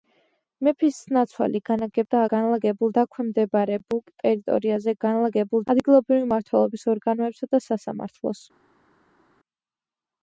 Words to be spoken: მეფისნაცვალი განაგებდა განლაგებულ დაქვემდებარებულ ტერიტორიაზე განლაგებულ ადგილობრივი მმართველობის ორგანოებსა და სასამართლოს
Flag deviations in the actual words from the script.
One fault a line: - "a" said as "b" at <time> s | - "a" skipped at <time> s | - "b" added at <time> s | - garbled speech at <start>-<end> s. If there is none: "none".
none